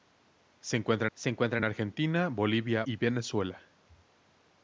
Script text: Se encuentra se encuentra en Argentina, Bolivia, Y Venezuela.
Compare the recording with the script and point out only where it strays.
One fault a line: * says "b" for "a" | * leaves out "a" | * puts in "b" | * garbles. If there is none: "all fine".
all fine